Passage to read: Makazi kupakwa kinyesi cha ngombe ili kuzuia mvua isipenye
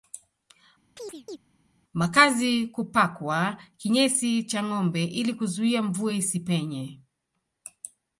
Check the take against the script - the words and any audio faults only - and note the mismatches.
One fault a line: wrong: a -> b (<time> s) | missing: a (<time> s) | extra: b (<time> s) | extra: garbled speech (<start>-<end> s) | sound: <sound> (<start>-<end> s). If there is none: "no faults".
sound: chirp (1.0-1.4 s)